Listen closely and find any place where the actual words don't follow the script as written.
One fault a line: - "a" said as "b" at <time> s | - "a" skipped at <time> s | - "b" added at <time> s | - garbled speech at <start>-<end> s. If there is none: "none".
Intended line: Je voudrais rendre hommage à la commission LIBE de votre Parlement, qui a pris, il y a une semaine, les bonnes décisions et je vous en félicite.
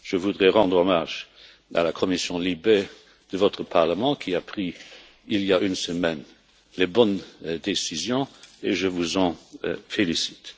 none